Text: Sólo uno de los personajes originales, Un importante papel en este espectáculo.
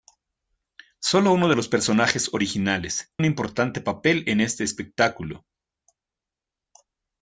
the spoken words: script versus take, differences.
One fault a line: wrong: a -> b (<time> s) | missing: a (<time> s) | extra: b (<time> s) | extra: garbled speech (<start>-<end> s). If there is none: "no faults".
no faults